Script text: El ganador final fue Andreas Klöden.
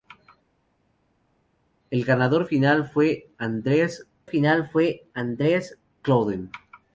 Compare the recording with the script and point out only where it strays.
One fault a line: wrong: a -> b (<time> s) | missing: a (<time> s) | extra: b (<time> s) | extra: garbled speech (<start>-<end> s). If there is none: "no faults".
extra: final fue Andreas (4.2 s)